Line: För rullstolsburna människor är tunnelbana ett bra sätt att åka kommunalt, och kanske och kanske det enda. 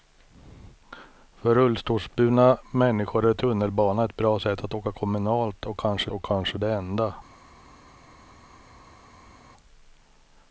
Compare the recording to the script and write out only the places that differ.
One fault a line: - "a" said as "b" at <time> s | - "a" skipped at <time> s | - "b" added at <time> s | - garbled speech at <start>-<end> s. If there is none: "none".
none